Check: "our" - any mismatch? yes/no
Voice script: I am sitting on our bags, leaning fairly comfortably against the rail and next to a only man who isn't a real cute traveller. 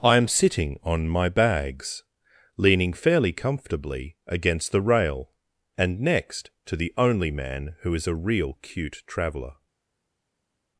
yes